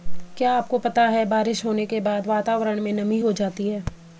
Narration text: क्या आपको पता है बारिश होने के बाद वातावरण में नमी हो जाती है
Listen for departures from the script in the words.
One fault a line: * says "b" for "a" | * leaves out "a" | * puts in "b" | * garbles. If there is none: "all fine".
all fine